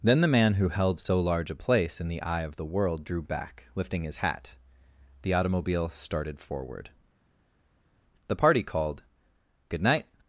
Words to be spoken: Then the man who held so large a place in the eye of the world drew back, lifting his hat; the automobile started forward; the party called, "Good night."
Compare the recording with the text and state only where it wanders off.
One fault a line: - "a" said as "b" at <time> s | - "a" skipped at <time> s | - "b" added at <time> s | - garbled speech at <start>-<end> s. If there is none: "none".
none